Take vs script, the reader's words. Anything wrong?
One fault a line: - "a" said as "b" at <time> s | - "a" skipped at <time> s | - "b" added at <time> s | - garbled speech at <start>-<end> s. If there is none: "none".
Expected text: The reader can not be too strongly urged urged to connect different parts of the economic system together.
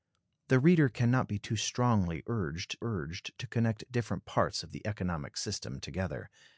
none